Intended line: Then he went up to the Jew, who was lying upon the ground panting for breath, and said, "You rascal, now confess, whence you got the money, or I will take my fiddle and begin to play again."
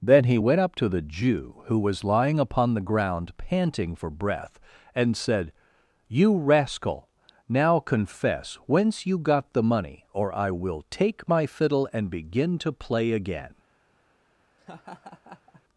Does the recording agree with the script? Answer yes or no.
yes